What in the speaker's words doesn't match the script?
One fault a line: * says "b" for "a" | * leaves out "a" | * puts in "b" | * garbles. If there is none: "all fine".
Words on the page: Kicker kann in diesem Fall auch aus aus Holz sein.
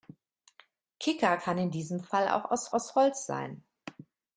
all fine